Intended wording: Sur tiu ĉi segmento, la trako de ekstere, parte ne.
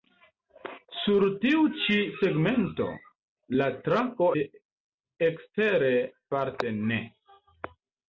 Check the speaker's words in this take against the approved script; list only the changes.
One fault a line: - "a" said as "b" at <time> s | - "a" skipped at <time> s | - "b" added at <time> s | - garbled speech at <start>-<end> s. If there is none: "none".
none